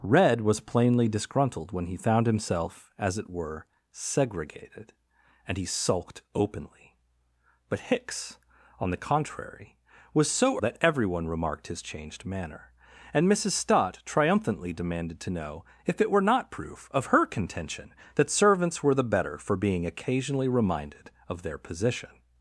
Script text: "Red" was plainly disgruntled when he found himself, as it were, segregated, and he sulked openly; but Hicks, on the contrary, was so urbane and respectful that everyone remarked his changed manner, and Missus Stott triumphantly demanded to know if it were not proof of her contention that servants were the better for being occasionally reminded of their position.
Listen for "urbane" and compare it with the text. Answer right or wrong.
wrong